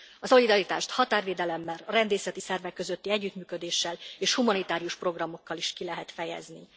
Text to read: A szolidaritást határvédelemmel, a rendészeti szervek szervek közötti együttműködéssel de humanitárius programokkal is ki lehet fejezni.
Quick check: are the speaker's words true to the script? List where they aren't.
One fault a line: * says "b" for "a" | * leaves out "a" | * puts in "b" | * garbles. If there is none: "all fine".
* leaves out "szervek"
* says "és" for "de"